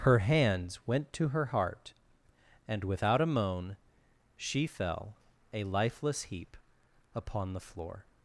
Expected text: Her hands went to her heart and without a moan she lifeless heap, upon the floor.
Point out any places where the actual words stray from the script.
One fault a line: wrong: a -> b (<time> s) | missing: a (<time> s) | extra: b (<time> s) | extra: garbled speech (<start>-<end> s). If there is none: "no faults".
extra: fell a (4.6 s)